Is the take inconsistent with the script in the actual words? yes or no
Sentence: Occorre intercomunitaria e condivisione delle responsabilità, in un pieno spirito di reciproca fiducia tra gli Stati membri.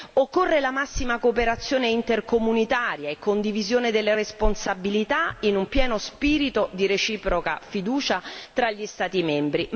yes